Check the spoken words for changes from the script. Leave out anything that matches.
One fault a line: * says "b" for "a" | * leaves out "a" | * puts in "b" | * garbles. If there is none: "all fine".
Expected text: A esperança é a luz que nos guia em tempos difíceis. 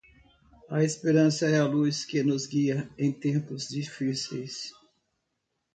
all fine